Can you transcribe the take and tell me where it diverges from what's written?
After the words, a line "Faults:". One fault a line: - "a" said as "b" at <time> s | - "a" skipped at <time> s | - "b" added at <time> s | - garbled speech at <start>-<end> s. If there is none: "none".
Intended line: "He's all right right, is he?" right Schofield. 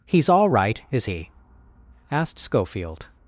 "He's all right, is he?" asked Schofield.
Faults:
- "right" skipped at 0.8 s
- "right" said as "asked" at 2.1 s